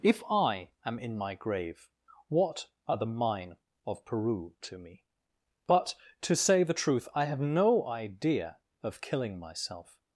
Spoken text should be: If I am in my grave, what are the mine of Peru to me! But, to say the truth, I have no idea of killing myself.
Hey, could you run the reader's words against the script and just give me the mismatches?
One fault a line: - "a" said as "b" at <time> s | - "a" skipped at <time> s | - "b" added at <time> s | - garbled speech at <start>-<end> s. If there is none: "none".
none